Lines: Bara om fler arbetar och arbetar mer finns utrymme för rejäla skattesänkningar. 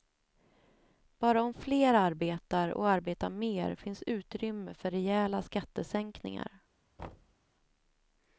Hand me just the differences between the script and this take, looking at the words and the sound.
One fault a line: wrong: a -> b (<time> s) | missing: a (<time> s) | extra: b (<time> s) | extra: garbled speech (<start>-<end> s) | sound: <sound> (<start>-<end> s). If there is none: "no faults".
sound: thud (7.0-7.4 s)